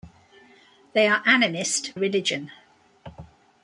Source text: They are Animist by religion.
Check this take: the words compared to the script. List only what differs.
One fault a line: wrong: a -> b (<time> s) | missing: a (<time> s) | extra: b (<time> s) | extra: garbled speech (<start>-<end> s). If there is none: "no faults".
missing: by (1.9 s)